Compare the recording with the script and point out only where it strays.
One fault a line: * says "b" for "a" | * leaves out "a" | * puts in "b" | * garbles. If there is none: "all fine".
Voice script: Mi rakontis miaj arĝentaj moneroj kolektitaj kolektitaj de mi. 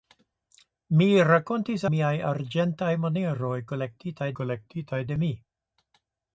all fine